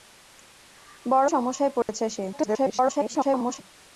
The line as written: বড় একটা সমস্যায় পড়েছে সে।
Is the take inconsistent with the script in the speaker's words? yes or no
yes